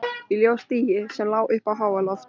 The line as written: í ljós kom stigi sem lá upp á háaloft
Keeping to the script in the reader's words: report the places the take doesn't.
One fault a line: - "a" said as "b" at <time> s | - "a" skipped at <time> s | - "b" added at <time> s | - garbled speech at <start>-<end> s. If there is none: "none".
- "kom" skipped at 0.6 s